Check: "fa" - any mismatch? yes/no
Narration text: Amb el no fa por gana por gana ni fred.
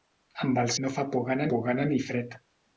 no